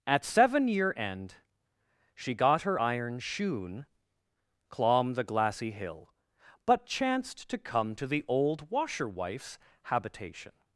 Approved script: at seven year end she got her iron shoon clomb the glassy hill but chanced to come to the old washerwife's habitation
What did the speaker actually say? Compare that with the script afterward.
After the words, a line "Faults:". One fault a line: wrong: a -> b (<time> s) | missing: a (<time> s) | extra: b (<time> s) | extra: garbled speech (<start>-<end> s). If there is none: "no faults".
at seven year end she got her iron shoon clomb the glassy hill but chanced to come to the old washerwife's habitation
Faults:
no faults